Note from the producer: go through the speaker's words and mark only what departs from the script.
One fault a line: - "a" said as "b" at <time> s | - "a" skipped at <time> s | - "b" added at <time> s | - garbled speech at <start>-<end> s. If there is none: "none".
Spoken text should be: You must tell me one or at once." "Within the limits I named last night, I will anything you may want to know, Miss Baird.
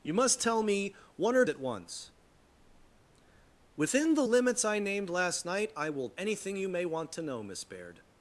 none